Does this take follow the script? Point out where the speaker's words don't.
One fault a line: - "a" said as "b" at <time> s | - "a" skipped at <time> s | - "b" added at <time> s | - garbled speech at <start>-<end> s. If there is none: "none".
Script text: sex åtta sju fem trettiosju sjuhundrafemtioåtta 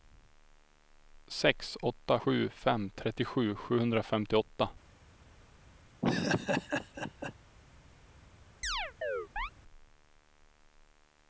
none